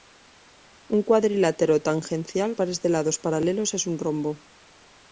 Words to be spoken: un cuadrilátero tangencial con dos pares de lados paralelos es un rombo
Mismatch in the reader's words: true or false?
true